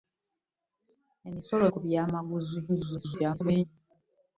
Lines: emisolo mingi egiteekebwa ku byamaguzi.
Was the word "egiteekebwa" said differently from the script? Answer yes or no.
yes